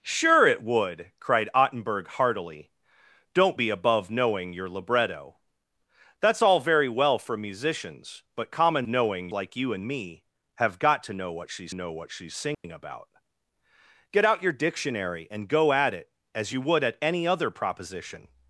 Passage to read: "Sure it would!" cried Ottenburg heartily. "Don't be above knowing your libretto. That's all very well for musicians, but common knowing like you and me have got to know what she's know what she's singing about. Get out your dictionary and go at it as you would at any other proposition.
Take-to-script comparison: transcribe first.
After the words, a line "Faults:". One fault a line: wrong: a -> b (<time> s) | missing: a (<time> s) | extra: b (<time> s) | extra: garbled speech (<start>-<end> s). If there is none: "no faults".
"Sure it would!" cried Ottenburg heartily. "Don't be above knowing your libretto. That's all very well for musicians, but common knowing like you and me have got to know what she's know what she's singing about. Get out your dictionary and go at it as you would at any other proposition.
Faults:
no faults